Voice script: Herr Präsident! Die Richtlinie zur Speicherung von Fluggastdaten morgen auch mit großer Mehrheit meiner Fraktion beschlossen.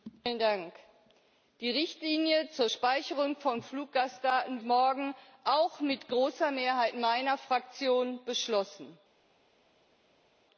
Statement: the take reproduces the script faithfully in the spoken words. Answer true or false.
true